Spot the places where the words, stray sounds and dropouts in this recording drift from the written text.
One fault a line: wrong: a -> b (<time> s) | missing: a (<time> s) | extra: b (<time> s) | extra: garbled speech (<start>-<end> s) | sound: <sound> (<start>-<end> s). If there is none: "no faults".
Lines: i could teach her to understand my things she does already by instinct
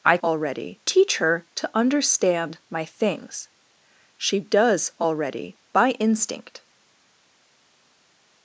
wrong: could -> already (0.2 s)